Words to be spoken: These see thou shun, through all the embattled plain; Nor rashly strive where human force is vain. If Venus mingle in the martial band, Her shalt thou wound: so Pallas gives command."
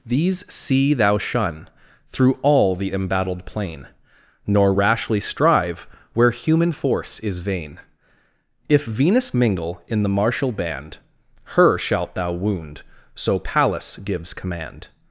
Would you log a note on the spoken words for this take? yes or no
no